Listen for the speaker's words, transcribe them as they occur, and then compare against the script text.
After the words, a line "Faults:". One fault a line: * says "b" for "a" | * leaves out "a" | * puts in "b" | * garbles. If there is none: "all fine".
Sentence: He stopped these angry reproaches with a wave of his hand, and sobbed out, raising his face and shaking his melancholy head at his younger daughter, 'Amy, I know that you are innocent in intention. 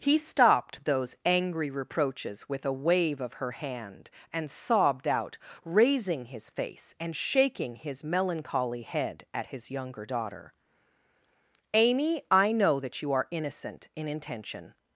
He stopped those angry reproaches with a wave of her hand, and sobbed out, raising his face and shaking his melancholy head at his younger daughter, 'Amy, I know that you are innocent in intention.
Faults:
* says "those" for "these"
* says "her" for "his"